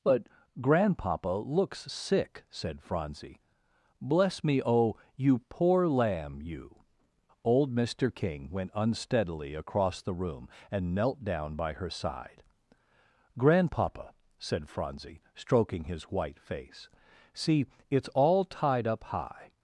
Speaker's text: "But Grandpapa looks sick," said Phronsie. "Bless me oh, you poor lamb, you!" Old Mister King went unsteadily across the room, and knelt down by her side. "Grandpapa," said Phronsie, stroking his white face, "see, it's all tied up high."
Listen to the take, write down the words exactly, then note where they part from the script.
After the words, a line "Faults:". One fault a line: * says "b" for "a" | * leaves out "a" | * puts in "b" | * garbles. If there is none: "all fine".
"But Grandpapa looks sick," said Phronsie. "Bless me oh, you poor lamb, you!" Old Mister King went unsteadily across the room, and knelt down by her side. "Grandpapa," said Phronsie, stroking his white face, "see, it's all tied up high."
Faults:
all fine